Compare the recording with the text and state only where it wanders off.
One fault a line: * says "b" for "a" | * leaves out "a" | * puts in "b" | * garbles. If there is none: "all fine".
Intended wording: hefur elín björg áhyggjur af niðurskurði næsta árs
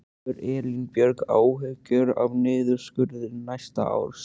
all fine